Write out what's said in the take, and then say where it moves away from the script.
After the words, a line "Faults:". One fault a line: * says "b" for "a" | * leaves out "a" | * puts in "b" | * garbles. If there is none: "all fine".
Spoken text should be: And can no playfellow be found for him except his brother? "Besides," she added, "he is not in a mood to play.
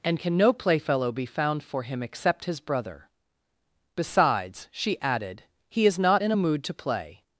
And can no playfellow be found for him except his brother? "Besides," she added, "he is not in a mood to play.
Faults:
all fine